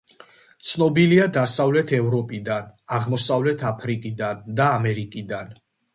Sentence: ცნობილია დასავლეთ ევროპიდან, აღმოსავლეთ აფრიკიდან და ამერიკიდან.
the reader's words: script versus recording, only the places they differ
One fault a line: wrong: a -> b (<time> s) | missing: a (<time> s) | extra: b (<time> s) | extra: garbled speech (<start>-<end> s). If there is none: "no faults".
no faults